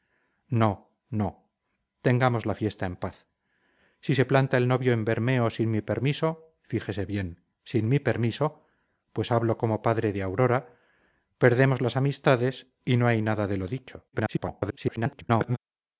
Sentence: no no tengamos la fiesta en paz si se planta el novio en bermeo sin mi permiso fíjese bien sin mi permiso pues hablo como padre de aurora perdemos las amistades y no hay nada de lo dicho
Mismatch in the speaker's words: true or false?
true